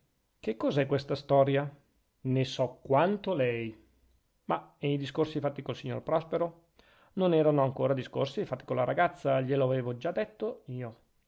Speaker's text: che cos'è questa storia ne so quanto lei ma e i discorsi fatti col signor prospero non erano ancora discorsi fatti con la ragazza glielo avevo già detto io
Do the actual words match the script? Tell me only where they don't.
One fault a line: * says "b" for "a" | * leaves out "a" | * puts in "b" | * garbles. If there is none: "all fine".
all fine